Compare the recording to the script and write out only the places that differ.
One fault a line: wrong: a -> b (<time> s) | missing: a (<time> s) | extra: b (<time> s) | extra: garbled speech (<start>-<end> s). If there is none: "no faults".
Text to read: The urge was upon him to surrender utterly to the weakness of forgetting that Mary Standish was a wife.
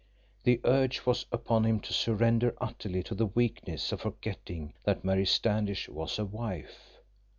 no faults